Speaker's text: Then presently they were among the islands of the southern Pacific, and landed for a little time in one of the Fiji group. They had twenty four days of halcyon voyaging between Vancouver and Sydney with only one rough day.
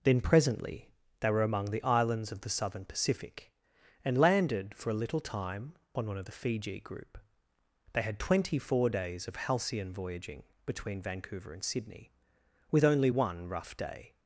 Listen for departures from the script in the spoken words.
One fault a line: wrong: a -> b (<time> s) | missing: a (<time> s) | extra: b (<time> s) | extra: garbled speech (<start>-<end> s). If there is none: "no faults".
wrong: in -> on (5.9 s)